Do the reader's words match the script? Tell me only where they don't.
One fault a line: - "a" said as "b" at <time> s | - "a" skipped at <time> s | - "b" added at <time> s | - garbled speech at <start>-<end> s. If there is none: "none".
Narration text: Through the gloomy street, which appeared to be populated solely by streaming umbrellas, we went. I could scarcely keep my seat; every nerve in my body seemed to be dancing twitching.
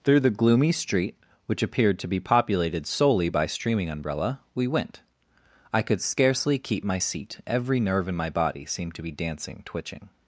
- "umbrellas" said as "umbrella" at 3.9 s